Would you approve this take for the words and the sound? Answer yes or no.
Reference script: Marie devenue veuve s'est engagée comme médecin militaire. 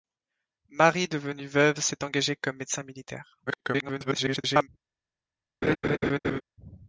no